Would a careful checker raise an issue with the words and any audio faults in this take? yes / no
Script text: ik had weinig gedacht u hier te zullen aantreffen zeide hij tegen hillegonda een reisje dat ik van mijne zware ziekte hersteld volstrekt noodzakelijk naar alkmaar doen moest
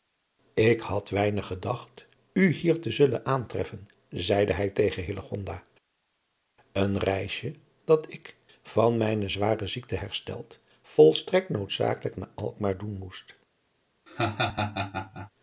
yes